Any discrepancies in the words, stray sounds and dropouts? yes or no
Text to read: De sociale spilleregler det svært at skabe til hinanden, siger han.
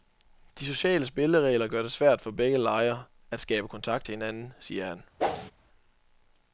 yes